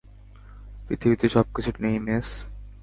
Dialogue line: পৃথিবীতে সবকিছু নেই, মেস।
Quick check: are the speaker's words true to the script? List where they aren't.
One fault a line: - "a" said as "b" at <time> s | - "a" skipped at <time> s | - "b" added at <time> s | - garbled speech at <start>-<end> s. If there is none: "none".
none